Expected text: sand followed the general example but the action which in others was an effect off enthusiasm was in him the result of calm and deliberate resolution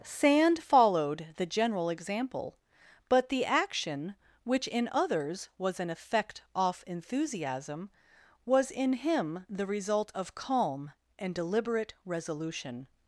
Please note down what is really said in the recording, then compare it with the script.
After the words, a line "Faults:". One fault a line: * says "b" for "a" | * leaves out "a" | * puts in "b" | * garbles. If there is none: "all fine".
sand followed the general example but the action which in others was an effect off enthusiasm was in him the result of calm and deliberate resolution
Faults:
all fine